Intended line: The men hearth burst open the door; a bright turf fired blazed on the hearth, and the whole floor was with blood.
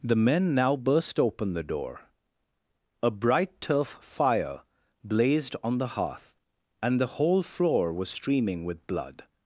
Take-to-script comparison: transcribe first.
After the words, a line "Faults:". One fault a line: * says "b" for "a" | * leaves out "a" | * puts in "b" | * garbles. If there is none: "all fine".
The men now burst open the door; a bright turf fire blazed on the hearth, and the whole floor was streaming with blood.
Faults:
* says "now" for "hearth"
* says "fire" for "fired"
* puts in "streaming"